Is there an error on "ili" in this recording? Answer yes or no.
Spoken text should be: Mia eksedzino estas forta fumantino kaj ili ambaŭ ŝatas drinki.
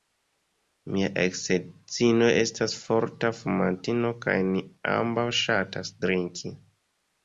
yes